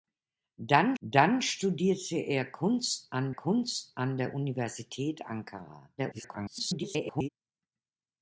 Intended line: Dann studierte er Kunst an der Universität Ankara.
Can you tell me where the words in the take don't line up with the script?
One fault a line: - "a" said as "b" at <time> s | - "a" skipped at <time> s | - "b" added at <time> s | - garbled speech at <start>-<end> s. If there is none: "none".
- "dann" added at 1.0 s
- "Kunst an" added at 3.3 s
- garbled speech at 6.0-7.3 s